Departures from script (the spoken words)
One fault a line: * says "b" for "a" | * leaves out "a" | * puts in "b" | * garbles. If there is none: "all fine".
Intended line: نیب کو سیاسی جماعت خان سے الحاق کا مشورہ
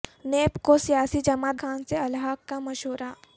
all fine